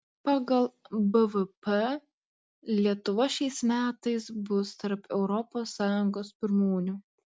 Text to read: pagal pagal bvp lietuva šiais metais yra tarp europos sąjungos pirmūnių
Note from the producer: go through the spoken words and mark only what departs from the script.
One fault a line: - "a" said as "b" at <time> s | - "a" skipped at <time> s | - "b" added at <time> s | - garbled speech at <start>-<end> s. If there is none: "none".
- "pagal" skipped at 0.6 s
- "yra" said as "bus" at 4.5 s